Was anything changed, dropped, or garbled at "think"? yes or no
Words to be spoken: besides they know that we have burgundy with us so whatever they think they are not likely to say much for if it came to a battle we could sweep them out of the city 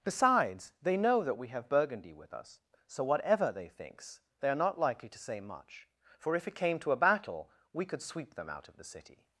yes